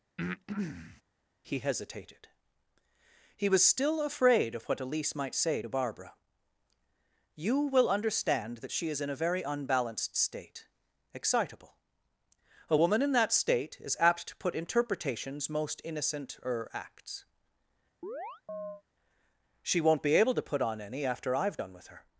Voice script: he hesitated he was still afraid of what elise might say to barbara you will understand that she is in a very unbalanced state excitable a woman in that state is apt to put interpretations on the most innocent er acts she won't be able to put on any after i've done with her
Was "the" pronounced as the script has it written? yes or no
no